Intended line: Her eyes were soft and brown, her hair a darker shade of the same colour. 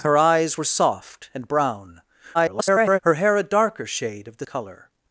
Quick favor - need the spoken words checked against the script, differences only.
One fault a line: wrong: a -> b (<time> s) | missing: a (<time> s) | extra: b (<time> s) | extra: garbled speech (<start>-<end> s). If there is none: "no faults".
extra: garbled speech (2.3-3.0 s)
missing: same (4.5 s)